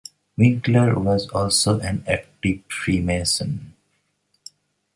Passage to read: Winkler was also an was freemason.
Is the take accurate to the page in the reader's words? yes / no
no